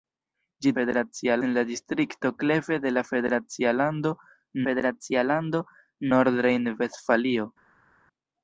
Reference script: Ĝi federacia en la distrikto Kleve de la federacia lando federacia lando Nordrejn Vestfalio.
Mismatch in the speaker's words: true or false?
false